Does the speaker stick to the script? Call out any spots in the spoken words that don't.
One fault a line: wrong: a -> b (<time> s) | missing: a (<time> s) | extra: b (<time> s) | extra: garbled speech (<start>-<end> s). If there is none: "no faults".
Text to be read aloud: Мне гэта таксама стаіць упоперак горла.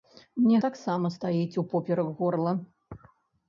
missing: гэта (0.6 s)